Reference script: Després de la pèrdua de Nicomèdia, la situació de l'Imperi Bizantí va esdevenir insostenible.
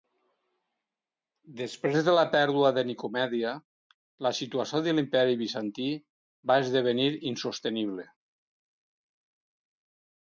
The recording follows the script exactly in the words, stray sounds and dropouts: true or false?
true